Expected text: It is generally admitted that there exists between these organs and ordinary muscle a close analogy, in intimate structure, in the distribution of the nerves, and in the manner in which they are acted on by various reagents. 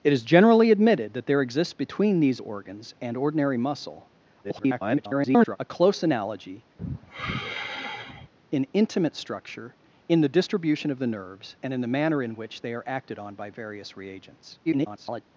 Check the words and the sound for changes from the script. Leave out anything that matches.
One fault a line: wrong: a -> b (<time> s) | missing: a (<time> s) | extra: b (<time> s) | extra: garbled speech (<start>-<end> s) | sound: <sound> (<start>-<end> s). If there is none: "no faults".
extra: garbled speech (4.4-5.6 s)
sound: sigh (6.8-8.3 s)
extra: garbled speech (14.6-15.2 s)